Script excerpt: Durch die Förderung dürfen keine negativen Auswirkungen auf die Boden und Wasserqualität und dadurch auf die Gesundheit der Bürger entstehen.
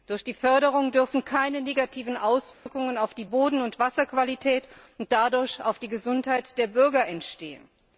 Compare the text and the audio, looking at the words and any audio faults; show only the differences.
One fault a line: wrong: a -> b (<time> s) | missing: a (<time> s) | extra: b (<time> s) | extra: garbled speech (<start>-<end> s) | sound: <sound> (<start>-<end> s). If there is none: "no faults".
sound: dropout (2.5-2.7 s)